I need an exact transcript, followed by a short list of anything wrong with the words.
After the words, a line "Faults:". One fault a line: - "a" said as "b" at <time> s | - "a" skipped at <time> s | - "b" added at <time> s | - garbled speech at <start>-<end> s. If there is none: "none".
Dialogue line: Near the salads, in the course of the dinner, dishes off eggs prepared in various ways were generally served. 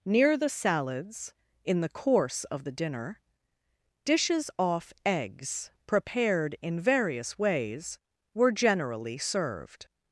Near the salads, in the course of the dinner, dishes off eggs prepared in various ways were generally served.
Faults:
none